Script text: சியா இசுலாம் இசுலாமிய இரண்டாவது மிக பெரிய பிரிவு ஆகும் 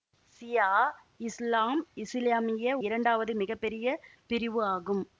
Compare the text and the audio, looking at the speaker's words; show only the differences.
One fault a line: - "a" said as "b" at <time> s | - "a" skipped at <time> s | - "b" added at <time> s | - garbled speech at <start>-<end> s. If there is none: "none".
none